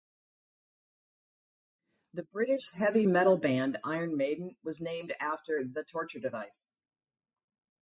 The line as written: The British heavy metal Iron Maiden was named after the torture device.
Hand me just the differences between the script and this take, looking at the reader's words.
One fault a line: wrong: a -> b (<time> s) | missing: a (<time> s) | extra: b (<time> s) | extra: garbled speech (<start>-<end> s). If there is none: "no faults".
extra: band (3.4 s)